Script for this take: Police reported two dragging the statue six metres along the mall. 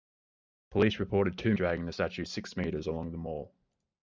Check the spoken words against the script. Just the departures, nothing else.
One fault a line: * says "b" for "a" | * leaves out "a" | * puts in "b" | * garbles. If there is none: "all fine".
all fine